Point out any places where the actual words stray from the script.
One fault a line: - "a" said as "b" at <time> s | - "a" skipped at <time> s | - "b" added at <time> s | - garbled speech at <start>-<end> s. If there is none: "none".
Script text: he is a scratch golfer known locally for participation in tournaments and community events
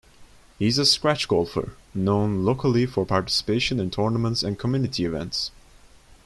none